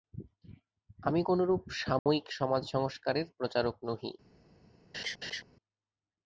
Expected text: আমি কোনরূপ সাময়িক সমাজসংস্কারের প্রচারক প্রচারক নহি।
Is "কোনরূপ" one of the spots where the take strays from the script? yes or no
no